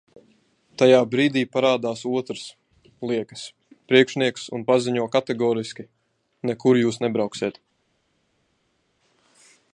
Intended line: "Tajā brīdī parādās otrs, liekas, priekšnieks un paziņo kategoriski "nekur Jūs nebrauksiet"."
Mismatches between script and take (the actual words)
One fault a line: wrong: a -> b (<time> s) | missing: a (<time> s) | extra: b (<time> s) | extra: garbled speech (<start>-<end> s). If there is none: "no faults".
no faults